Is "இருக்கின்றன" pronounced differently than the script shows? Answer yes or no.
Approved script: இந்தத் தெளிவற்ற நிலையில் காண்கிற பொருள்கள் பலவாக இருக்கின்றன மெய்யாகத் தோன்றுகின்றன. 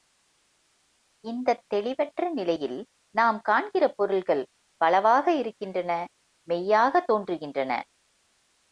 no